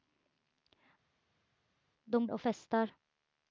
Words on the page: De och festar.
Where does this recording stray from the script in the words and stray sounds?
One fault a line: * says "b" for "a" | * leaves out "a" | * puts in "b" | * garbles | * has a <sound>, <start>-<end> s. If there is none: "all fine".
all fine